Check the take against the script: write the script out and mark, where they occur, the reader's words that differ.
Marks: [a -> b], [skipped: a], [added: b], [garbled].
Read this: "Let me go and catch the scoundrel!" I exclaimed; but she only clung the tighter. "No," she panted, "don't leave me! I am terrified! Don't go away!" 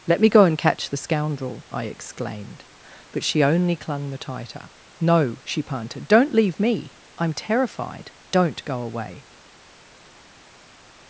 "Let me go and catch the scoundrel!" I exclaimed; but she only clung the tighter. "No," she panted, "don't leave me! I am terrified! Don't go away!"